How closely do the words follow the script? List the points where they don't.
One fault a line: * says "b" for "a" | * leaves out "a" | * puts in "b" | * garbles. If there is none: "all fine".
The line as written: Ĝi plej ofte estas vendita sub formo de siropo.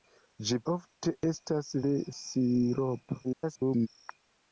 * leaves out "plej"
* leaves out "vendita sub formo"
* garbles